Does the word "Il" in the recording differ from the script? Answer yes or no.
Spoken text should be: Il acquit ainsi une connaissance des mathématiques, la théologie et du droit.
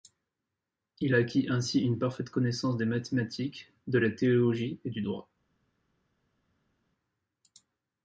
no